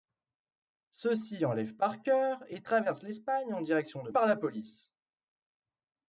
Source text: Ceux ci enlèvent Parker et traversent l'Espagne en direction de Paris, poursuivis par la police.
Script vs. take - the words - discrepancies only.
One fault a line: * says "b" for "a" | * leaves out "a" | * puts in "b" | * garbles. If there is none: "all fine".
* leaves out "Paris poursuivis"